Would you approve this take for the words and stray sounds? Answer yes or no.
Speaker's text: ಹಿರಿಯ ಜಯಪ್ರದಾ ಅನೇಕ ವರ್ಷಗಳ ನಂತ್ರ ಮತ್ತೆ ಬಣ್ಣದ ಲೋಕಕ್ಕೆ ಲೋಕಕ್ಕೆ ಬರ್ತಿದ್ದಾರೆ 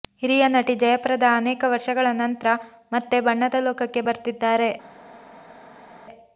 no